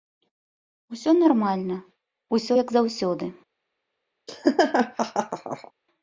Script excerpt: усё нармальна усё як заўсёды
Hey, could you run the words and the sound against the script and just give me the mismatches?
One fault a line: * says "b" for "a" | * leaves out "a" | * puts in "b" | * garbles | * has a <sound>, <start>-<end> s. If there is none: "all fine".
* has a laugh, 4.3-5.7 s